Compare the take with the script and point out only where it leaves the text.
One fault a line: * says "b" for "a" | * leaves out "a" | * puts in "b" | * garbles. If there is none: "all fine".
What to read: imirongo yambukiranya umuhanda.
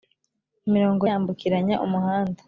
all fine